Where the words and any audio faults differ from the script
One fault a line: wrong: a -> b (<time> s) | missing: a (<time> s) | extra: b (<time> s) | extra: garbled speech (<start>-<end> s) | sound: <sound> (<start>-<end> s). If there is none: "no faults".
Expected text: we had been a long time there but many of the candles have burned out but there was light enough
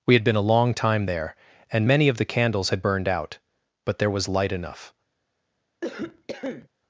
wrong: but -> and (1.7 s)
wrong: have -> had (2.7 s)
sound: cough (5.8-6.7 s)